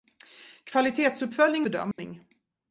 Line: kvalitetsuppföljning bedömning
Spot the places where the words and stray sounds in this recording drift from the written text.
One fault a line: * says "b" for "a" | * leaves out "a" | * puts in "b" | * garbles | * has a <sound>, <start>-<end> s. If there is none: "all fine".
* has a dropout, 1.9-2.0 s